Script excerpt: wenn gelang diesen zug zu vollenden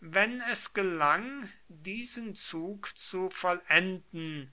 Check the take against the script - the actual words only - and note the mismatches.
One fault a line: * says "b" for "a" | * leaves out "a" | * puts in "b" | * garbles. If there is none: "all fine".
* puts in "es"